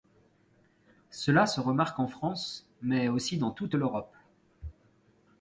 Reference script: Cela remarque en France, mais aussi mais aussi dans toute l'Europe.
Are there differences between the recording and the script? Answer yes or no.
yes